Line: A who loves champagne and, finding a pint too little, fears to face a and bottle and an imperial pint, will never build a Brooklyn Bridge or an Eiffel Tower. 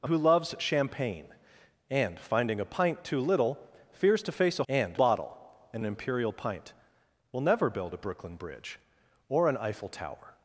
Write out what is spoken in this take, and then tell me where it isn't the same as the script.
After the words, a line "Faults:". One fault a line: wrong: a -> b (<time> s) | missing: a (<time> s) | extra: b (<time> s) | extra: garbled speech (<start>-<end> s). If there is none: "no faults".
A who loves champagne and, finding a pint too little, fears to face a and bottle and an imperial pint, will never build a Brooklyn Bridge or an Eiffel Tower.
Faults:
no faults